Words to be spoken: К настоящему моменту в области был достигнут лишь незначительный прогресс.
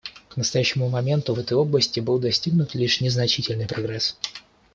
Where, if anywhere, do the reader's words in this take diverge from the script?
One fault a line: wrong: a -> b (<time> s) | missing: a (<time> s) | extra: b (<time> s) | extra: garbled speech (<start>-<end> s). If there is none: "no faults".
extra: этой (1.4 s)